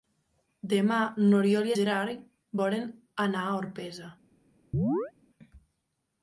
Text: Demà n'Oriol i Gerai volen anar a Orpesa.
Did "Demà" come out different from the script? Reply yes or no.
no